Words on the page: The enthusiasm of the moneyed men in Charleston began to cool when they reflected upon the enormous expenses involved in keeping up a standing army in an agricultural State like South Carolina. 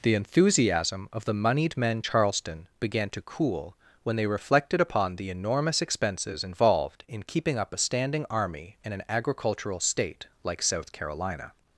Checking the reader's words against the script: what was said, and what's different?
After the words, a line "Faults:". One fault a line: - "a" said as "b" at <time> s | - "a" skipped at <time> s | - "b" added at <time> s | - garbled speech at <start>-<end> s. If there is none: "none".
The enthusiasm of the moneyed men Charleston began to cool when they reflected upon the enormous expenses involved in keeping up a standing army in an agricultural State like South Carolina.
Faults:
- "in" skipped at 2.0 s